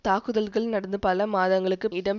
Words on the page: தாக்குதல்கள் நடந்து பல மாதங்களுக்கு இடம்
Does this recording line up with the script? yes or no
yes